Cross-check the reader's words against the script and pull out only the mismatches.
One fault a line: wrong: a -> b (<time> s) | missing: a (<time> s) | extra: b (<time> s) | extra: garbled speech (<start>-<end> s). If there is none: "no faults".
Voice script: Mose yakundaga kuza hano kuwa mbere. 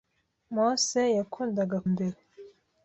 missing: kuza hano kuwa (1.8 s)